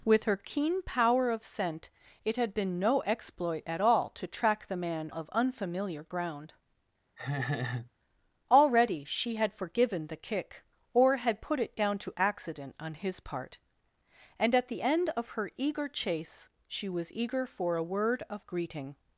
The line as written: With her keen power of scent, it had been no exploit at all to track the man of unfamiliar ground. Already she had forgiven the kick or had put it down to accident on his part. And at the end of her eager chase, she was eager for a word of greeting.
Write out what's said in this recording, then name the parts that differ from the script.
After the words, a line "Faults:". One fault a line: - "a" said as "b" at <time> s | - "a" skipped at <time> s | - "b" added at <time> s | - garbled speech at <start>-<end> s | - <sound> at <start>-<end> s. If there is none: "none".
With her keen power of scent, it had been no exploit at all to track the man of unfamiliar ground. Already she had forgiven the kick or had put it down to accident on his part. And at the end of her eager chase, she was eager for a word of greeting.
Faults:
- laugh at 7.2-7.9 s